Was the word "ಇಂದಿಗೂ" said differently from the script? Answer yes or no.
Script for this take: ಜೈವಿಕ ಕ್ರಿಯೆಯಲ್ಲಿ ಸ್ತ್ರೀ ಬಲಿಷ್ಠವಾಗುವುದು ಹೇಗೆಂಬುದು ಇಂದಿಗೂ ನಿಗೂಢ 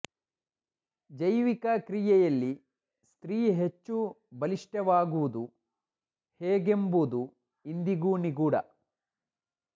no